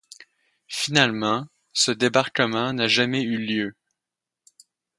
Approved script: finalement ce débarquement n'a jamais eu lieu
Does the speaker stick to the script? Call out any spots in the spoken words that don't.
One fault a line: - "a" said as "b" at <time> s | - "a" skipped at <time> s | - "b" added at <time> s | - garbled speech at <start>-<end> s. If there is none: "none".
none